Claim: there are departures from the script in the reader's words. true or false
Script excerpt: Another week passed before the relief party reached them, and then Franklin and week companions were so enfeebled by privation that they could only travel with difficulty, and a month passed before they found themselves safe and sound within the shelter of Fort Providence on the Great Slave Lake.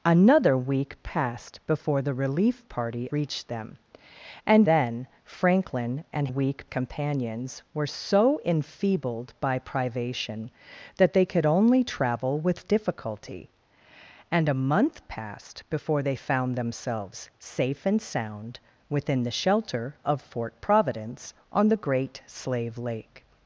false